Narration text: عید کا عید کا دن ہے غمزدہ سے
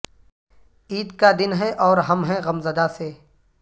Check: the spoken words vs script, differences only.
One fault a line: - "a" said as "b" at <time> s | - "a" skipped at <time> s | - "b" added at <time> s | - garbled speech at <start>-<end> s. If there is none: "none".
- "عید کا دن ہے" said as "دن ہے اور ہم ہیں" at 1.4 s